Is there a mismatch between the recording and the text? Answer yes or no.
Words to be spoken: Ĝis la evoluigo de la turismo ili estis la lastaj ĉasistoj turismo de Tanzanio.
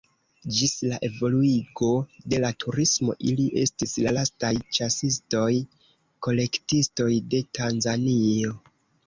yes